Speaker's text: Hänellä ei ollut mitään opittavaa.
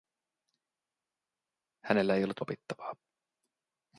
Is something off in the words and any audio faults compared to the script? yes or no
yes